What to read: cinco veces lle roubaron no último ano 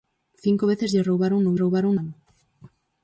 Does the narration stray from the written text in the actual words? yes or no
yes